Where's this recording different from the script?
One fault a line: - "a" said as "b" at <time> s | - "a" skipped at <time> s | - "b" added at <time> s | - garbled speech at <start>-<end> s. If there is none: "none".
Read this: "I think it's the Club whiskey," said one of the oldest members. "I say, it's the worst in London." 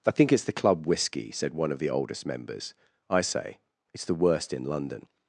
none